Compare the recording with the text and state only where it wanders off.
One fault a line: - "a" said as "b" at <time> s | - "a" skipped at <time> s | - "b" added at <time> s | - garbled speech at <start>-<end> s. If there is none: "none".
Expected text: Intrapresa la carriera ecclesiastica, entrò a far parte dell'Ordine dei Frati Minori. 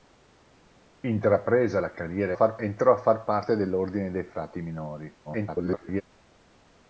- "ecclesiastica" said as "far" at 2.3 s
- garbled speech at 5.2-6.0 s